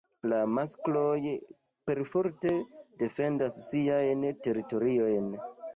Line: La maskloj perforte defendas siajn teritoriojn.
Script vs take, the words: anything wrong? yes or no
no